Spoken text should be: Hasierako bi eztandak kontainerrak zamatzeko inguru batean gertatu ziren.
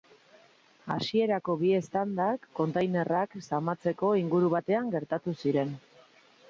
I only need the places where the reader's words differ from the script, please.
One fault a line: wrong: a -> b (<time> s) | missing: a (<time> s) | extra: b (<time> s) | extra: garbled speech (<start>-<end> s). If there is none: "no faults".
no faults